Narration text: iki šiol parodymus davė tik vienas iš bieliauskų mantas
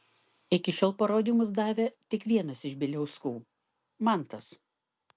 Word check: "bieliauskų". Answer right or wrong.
right